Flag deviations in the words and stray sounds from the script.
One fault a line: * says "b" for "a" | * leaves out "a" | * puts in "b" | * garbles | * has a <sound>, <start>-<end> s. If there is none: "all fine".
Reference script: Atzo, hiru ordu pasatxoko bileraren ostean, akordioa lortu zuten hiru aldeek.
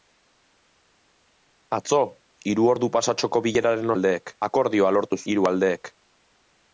* says "aldeek" for "ostean"
* leaves out "zuten"